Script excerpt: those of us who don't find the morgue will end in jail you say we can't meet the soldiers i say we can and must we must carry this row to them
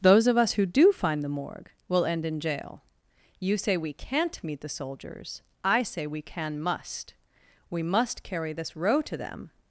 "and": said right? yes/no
no